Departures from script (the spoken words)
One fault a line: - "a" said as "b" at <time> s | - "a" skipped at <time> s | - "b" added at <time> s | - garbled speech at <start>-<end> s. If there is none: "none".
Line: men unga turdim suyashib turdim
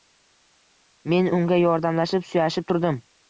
- "turdim" said as "yordamlashib" at 1.6 s